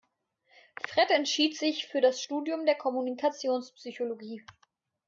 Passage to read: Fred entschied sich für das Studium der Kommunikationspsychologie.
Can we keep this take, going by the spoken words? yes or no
yes